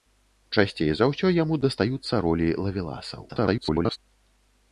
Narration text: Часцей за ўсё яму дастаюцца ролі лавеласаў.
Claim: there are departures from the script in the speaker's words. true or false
true